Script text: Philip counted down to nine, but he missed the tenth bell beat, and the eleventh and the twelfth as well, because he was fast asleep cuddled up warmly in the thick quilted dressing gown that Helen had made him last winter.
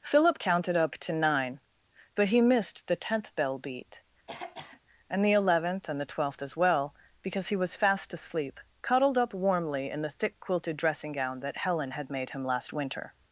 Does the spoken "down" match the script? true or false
false